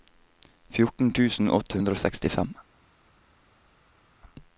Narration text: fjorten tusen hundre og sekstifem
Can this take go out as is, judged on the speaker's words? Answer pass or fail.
fail